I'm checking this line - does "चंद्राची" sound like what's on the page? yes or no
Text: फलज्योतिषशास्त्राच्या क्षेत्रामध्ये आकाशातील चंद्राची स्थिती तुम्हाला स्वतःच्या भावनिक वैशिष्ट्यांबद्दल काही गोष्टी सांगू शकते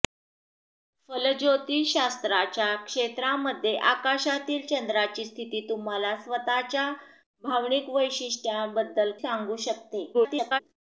yes